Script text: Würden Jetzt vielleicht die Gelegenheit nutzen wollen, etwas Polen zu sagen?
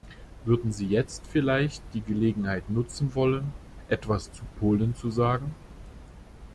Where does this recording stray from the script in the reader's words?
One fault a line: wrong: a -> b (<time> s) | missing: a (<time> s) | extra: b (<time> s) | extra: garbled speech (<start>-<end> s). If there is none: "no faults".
extra: Sie (0.7 s)
extra: zu (4.3 s)